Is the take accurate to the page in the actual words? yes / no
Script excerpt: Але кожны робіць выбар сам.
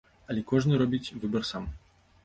yes